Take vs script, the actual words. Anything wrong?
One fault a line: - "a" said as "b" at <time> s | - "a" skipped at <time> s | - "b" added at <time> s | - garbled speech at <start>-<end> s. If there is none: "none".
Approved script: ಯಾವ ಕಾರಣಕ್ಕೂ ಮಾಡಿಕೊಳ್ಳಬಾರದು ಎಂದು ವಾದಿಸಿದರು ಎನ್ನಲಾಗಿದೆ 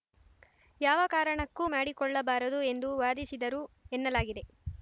none